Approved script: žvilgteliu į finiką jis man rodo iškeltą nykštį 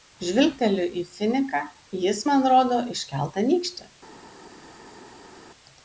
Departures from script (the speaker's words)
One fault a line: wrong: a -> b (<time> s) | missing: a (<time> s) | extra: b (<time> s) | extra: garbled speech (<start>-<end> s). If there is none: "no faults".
no faults